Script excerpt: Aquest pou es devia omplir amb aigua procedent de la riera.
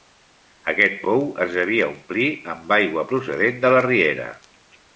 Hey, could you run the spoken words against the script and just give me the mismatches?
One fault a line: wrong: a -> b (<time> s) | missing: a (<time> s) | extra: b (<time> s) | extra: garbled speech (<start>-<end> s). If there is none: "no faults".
no faults